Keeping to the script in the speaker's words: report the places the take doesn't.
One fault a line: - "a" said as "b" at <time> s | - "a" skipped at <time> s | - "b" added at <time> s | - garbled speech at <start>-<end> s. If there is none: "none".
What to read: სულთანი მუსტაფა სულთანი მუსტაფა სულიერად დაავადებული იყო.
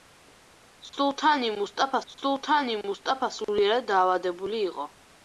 none